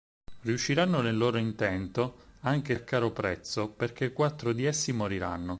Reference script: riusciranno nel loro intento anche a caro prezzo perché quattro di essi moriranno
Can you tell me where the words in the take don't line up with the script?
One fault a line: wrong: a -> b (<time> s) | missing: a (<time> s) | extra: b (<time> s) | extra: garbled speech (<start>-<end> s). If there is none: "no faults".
no faults